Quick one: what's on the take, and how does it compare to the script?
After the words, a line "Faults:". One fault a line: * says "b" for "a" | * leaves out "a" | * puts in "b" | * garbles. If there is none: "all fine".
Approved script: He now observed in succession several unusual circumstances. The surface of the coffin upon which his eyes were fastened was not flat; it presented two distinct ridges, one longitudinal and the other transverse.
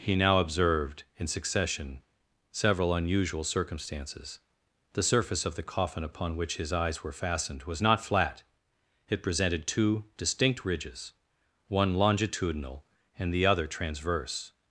He now observed in succession several unusual circumstances. The surface of the coffin upon which his eyes were fastened was not flat; it presented two distinct ridges, one longitudinal and the other transverse.
Faults:
all fine